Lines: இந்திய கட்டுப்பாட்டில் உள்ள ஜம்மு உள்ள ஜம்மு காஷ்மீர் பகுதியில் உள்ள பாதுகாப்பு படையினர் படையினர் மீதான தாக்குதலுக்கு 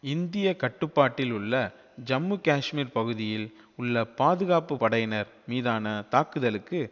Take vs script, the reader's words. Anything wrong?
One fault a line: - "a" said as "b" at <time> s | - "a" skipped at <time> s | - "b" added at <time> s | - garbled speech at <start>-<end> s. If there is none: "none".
- "உள்ள ஜம்மு" skipped at 2.4 s
- "படையினர்" skipped at 5.3 s